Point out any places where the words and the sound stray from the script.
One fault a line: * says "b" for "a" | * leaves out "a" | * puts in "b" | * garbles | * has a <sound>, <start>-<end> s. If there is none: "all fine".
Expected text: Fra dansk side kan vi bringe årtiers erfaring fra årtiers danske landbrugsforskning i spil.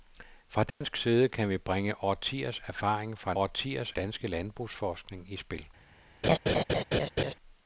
* has a dropout, 0.7-0.8 s
* has a laugh, 6.2-7.3 s